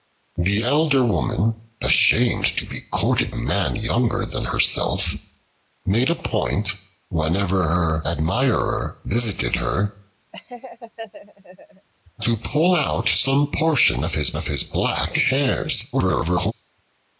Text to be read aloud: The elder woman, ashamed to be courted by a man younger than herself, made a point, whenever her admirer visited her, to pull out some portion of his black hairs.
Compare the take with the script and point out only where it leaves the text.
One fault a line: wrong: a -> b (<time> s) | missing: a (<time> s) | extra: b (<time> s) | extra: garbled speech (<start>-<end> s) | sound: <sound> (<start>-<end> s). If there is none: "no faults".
missing: by a (3.3 s)
sound: laugh (10.3-11.9 s)
extra: of his (14.4 s)
extra: garbled speech (15.9-16.5 s)